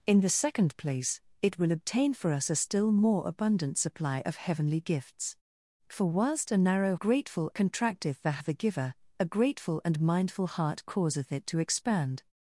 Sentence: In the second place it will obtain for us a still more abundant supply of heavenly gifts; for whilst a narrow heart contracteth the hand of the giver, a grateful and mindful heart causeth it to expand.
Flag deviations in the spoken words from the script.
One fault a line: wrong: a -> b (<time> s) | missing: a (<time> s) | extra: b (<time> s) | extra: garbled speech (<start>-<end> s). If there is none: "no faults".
wrong: heart -> grateful (6.9 s)
missing: hand (8.4 s)